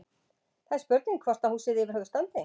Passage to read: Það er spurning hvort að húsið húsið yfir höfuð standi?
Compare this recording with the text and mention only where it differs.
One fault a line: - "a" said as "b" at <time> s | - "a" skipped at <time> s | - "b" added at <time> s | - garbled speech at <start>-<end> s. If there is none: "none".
- "húsið" skipped at 1.8 s